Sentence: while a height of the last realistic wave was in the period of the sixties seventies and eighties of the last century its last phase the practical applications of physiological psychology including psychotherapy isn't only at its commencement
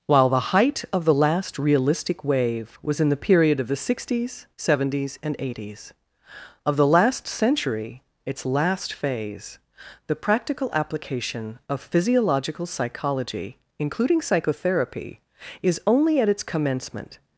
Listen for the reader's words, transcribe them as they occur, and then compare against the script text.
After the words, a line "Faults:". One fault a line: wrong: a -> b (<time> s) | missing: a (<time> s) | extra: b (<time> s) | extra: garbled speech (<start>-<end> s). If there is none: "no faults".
while the height of the last realistic wave was in the period of the sixties seventies and eighties of the last century its last phase the practical application of physiological psychology including psychotherapy is only at its commencement
Faults:
wrong: a -> the (0.3 s)
wrong: applications -> application (10.7 s)
wrong: isn't -> is (15.6 s)